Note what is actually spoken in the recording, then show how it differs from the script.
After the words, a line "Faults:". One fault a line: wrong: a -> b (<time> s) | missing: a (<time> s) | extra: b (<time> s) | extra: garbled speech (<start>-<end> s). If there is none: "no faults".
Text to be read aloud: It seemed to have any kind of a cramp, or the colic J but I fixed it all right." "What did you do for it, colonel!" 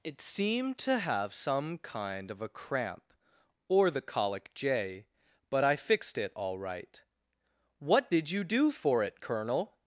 It seemed to have some kind of a cramp, or the colic J but I fixed it all right." "What did you do for it, colonel!"
Faults:
wrong: any -> some (1.3 s)